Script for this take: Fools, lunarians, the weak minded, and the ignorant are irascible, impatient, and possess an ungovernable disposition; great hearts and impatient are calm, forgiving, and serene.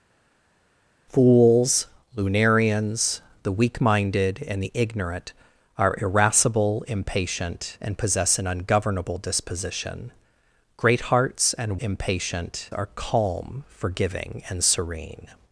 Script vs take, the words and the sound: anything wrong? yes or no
no